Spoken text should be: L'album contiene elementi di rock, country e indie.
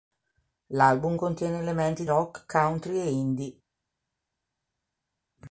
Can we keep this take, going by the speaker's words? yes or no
no